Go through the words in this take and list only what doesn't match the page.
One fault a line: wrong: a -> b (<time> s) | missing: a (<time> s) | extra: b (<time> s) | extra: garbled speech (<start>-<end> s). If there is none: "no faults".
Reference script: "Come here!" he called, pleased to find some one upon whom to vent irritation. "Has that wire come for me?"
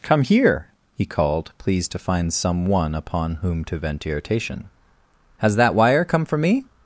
no faults